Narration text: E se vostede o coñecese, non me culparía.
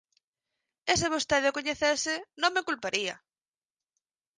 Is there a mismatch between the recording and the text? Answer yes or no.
no